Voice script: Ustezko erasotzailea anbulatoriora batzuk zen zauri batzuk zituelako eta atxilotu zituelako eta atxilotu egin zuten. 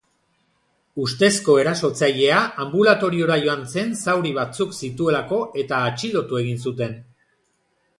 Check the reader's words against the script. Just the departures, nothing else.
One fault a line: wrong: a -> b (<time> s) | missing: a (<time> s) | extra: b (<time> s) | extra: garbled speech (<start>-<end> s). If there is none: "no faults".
wrong: batzuk -> joan (3.4 s)
missing: zituelako eta atxilotu (6.4 s)